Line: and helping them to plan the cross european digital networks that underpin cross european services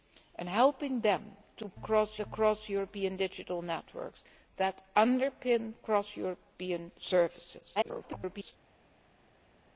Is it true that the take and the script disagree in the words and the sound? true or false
true